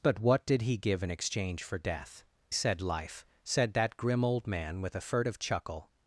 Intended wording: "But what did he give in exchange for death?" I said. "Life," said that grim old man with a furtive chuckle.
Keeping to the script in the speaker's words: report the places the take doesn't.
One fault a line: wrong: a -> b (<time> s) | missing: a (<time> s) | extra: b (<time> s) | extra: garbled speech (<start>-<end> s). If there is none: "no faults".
missing: I (2.2 s)